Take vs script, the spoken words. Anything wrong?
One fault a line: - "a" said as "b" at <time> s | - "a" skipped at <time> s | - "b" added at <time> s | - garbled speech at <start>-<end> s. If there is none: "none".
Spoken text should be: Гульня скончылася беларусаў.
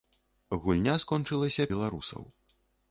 none